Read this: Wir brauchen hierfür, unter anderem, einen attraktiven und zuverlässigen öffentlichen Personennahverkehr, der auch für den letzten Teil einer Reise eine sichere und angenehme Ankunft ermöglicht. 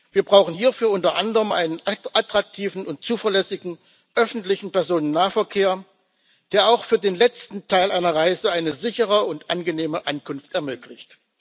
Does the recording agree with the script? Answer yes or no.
yes